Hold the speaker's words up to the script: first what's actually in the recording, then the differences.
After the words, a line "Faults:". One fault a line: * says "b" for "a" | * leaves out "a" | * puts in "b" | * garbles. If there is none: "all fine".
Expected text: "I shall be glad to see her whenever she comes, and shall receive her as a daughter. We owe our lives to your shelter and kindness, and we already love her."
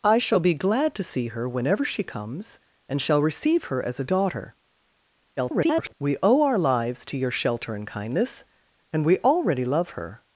"I shall be glad to see her whenever she comes, and shall receive her as a daughter. [garbled] We owe our lives to your shelter and kindness, and we already love her."
Faults:
* garbles